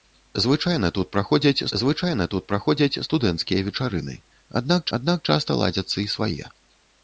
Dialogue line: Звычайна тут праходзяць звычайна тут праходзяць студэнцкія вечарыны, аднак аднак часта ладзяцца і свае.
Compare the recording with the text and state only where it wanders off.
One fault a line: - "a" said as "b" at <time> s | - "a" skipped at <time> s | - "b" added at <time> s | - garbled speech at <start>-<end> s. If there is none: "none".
none